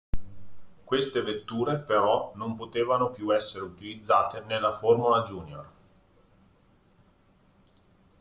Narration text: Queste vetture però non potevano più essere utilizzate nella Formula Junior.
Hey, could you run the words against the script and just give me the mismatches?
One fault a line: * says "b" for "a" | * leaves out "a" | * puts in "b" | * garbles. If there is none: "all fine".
all fine